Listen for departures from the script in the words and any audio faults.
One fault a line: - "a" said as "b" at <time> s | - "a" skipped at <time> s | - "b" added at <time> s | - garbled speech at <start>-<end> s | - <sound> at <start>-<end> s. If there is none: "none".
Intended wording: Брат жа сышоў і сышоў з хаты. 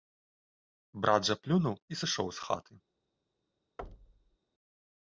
- "сышоў" said as "плюнуў" at 1.4 s
- thud at 3.8-4.4 s